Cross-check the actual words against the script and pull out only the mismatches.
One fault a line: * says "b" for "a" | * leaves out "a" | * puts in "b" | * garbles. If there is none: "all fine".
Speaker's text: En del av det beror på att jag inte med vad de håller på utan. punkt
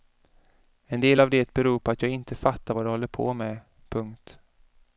* says "fattar" for "med"
* says "med" for "utan"